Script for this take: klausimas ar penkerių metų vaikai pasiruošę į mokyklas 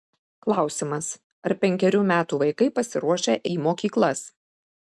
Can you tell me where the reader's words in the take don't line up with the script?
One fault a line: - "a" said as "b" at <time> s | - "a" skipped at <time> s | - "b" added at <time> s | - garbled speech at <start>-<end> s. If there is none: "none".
none